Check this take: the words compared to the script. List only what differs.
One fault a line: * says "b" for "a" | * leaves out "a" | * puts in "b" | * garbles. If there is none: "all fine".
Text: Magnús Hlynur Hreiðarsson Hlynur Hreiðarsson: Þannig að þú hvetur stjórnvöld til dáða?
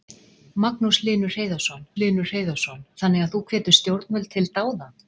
all fine